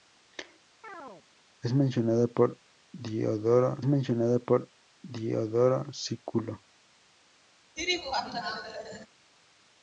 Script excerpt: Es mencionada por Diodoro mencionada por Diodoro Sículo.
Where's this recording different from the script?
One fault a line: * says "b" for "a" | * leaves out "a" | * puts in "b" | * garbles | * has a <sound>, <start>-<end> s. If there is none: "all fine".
* has a chirp, 0.8-1.3 s
* has a laugh, 7.8-9.1 s